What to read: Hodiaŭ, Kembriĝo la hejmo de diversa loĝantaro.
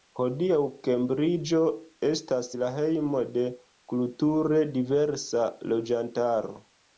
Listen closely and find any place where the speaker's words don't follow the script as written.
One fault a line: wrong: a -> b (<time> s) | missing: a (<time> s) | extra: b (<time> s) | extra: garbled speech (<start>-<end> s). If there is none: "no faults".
extra: estas (2.1 s)
extra: kulture (3.9 s)